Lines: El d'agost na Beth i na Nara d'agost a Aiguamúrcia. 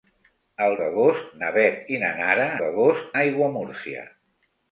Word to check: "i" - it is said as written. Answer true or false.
true